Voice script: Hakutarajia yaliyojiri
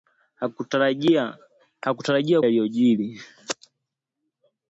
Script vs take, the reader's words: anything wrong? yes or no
no